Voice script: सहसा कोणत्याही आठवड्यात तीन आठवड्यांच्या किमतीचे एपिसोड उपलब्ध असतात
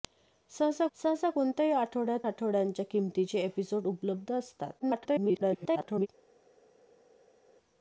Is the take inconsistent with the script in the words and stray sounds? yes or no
yes